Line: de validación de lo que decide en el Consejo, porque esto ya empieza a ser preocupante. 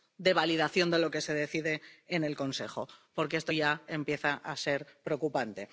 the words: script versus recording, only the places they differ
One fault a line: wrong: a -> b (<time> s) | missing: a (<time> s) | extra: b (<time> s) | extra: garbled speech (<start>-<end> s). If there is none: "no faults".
extra: se (1.2 s)